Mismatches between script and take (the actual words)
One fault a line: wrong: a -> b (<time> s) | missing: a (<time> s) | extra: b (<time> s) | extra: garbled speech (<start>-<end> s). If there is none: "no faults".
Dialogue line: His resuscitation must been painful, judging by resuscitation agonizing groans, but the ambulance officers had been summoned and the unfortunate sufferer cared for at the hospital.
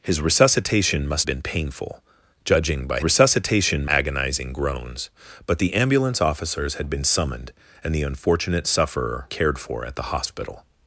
no faults